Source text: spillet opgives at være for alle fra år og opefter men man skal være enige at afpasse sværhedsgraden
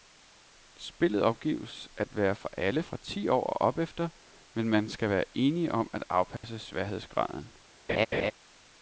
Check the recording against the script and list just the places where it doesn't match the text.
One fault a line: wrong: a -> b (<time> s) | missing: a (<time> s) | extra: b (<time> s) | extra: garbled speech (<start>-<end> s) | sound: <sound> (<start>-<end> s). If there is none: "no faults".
extra: ti (3.0 s)
extra: om (5.7 s)
sound: dropout (6.4-6.4 s)
sound: laugh (7.9-8.3 s)